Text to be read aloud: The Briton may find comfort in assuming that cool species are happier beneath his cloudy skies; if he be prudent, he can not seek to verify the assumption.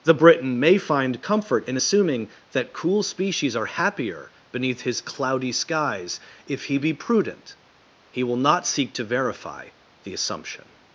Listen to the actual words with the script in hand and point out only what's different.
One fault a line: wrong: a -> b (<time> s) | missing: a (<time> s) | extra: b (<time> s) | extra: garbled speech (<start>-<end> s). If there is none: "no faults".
wrong: can -> will (8.2 s)